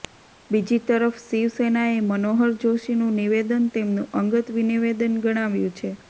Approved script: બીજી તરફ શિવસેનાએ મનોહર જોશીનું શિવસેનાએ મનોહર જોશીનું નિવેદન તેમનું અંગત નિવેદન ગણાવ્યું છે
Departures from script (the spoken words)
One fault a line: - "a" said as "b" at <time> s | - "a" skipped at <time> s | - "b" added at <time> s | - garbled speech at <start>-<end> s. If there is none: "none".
- "શિવસેનાએ મનોહર જોશીનું" skipped at 3.1 s